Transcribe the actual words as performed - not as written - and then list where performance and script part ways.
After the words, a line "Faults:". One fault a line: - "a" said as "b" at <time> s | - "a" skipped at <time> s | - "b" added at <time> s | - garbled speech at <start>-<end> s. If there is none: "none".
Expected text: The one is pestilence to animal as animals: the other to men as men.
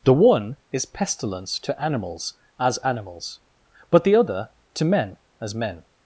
The one is pestilence to animals as animals: but the other to men as men.
Faults:
- "animal" said as "animals" at 1.8 s
- "but" added at 3.9 s